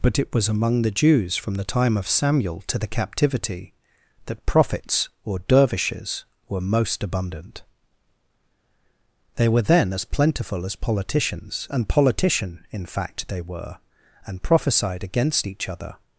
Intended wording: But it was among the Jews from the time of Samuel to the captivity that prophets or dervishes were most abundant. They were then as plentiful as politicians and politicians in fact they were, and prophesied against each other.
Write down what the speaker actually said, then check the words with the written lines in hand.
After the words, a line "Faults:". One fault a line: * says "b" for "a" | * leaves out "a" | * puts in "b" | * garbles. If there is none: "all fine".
But it was among the Jews from the time of Samuel to the captivity that prophets or dervishes were most abundant. They were then as plentiful as politicians and politician in fact they were, and prophesied against each other.
Faults:
* says "politician" for "politicians"